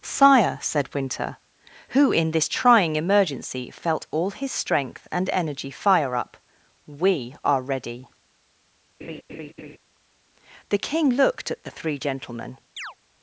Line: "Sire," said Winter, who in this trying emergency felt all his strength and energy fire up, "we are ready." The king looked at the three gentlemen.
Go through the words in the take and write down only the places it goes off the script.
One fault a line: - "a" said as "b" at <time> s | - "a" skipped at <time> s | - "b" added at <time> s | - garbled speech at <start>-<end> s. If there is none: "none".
none